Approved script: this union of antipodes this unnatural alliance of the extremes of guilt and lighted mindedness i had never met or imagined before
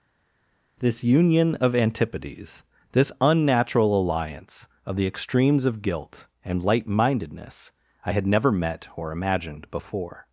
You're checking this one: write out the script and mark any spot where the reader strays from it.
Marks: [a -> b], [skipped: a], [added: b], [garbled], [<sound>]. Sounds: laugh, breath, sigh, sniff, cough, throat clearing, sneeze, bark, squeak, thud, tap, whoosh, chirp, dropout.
this union of antipodes this unnatural alliance of the extremes of guilt and [lighted -> light] mindedness i had never met or imagined before